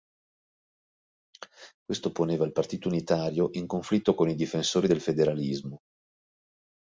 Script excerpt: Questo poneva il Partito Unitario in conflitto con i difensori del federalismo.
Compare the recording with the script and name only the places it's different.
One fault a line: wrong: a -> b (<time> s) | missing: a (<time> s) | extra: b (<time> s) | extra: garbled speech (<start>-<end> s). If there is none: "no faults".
no faults